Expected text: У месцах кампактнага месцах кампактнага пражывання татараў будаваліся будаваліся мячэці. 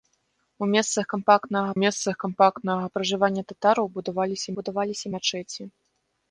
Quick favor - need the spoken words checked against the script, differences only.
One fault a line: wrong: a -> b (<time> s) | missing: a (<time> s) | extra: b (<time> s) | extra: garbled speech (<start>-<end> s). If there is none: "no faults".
no faults